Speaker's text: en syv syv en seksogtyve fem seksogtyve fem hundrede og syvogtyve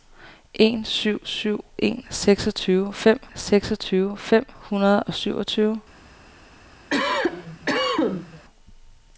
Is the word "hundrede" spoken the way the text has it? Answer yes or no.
yes